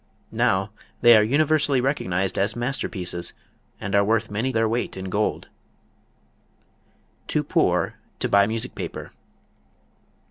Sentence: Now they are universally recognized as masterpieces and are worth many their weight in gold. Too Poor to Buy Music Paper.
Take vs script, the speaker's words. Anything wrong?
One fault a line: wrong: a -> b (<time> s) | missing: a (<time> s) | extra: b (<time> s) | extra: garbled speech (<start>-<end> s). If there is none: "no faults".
no faults